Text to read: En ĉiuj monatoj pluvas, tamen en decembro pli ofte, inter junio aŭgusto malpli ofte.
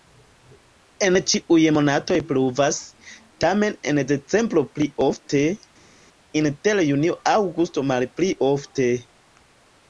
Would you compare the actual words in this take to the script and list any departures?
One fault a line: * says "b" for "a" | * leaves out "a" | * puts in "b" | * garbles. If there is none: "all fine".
all fine